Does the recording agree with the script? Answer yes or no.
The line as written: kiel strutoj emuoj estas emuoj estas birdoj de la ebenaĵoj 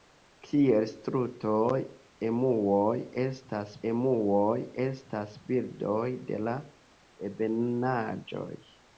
yes